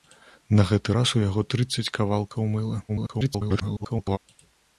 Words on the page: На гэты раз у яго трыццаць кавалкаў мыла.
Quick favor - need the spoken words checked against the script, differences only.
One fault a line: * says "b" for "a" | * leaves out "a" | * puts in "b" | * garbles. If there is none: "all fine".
* garbles